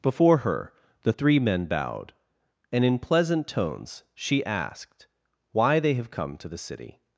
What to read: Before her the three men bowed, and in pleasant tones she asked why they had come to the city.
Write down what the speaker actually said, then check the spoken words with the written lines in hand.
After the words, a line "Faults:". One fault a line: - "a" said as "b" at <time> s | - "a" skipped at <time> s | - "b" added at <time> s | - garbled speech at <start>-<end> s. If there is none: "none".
Before her the three men bowed, and in pleasant tones she asked why they have come to the city.
Faults:
- "had" said as "have" at 5.9 s